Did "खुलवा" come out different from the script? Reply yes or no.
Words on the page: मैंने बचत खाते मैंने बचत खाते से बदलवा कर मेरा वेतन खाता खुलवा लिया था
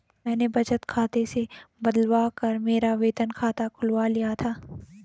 no